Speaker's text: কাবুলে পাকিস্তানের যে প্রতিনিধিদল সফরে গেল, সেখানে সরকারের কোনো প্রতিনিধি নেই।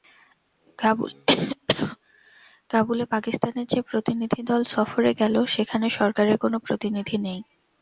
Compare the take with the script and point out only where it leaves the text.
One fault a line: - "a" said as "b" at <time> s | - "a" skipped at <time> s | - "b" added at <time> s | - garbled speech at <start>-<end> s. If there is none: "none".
none